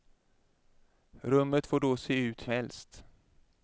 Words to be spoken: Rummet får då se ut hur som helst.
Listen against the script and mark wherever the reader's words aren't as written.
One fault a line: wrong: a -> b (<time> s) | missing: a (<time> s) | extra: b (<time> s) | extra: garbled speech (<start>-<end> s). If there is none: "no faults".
missing: hur som (2.5 s)